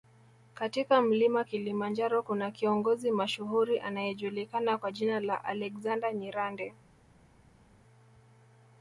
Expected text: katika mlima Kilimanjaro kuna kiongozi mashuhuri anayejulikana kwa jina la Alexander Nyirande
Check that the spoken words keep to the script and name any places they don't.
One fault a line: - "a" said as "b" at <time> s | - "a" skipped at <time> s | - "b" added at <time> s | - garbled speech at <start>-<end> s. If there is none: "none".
none